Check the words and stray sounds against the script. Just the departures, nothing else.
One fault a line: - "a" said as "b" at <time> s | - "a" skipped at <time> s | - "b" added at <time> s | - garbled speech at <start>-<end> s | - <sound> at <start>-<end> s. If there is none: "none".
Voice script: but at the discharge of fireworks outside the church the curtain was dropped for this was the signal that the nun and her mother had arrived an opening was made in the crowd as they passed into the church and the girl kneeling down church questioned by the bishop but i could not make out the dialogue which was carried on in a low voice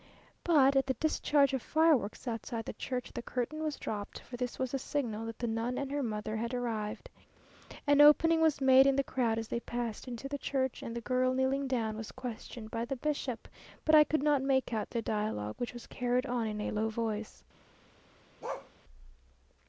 - "church" said as "was" at 12.0 s
- bark at 18.4-18.7 s